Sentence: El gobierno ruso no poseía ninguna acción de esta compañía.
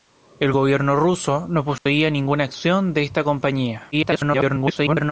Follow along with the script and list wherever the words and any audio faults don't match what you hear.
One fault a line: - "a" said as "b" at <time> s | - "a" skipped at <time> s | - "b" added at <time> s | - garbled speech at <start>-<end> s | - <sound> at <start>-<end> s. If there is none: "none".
- dropout at 1.8-1.9 s
- garbled speech at 3.9-5.1 s